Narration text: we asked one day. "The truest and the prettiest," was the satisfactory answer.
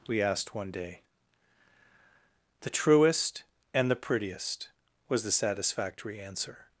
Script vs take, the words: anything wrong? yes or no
no